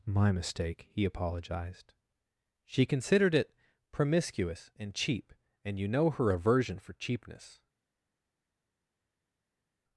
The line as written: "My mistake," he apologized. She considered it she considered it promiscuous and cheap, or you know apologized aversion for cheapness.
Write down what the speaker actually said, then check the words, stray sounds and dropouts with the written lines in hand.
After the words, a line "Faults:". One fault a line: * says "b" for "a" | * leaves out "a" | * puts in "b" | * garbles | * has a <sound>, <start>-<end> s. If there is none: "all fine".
"My mistake," he apologized. She considered it promiscuous and cheap, and you know her aversion for cheapness.
Faults:
* leaves out "she considered it"
* says "and" for "or"
* says "her" for "apologized"